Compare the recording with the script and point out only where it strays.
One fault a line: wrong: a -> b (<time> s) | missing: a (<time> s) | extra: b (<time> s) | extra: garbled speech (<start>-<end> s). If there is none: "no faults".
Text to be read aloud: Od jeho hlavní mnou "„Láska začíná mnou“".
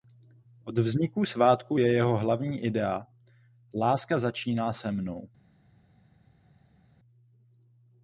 extra: vzniku svátku je (0.8 s)
wrong: mnou -> idea (2.6 s)
extra: se (4.7 s)